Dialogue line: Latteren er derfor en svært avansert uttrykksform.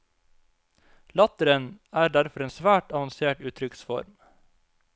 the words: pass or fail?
pass